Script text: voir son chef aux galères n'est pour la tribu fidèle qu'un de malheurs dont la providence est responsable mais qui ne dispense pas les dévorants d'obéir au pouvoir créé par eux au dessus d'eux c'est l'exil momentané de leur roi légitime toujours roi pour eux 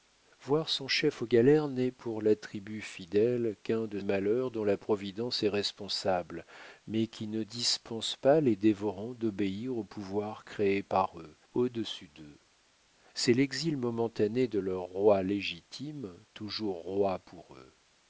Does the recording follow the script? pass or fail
pass